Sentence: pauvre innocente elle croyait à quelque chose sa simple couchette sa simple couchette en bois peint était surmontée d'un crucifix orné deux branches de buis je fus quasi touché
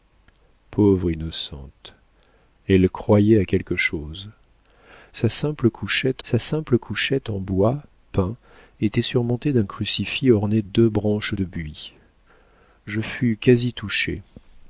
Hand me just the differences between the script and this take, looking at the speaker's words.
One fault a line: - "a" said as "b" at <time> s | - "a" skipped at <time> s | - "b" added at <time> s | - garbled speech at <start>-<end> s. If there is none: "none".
none